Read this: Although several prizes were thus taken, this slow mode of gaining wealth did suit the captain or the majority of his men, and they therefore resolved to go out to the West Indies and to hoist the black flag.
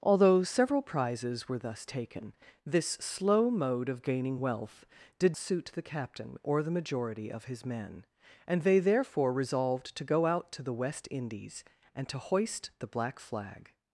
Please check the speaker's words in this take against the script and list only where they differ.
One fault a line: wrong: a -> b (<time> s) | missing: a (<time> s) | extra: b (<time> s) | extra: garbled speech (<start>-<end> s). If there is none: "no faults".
no faults